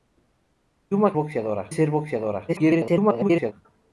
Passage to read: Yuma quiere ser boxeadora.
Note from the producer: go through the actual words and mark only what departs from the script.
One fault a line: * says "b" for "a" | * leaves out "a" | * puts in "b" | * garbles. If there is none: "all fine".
* says "boxeadora" for "quiere"
* garbles